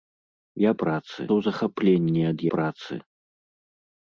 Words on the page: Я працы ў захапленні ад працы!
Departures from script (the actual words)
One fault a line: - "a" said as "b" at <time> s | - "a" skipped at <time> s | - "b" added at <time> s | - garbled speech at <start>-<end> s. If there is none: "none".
none